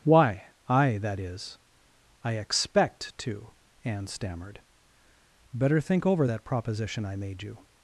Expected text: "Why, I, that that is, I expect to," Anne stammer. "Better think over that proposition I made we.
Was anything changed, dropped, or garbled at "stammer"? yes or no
yes